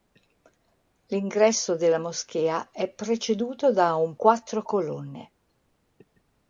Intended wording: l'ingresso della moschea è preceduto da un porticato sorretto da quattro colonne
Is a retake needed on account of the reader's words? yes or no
yes